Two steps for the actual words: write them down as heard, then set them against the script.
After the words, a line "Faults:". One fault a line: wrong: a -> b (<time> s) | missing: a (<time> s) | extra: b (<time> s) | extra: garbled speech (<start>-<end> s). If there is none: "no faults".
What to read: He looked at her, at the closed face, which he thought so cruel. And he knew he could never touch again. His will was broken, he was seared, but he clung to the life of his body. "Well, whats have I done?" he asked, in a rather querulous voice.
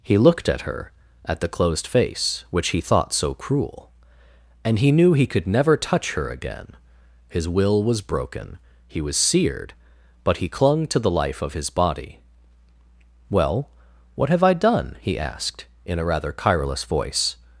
He looked at her, at the closed face, which he thought so cruel. And he knew he could never touch her again. His will was broken, he was seared, but he clung to the life of his body. "Well, what have I done?" he asked, in a rather querulous voice.
Faults:
extra: her (6.1 s)
wrong: whats -> what (14.2 s)